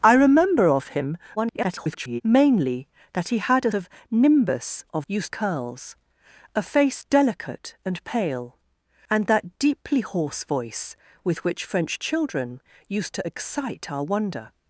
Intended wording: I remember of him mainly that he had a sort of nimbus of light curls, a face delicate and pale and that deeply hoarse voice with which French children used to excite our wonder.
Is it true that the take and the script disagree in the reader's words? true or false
true